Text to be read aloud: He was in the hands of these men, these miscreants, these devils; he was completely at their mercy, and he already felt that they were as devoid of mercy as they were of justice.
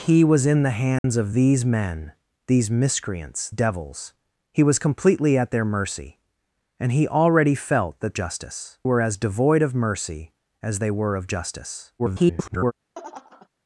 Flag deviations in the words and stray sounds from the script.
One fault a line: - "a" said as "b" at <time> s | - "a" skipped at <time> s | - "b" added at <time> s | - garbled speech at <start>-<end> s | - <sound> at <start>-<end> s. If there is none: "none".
- dropout at 1.0-1.0 s
- "these" skipped at 3.5 s
- "they" said as "justice" at 8.1 s
- garbled speech at 12.0-12.7 s
- laugh at 12.9-13.5 s